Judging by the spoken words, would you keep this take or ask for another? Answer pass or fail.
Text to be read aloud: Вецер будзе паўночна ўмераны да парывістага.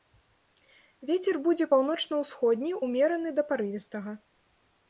fail